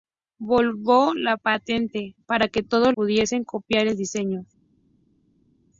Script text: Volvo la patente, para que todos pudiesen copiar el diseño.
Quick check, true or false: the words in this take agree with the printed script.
true